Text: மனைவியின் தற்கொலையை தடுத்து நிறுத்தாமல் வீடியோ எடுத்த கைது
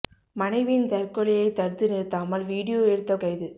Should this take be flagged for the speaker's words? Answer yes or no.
no